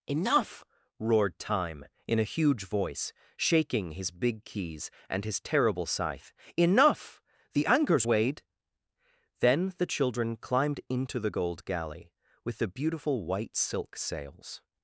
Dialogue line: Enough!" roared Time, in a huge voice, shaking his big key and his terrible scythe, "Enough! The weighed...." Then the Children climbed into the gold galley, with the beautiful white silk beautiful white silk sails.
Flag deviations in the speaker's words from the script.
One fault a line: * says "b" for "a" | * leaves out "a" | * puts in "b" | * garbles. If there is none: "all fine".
* says "keys" for "key"
* puts in "anchor's"
* leaves out "beautiful white silk"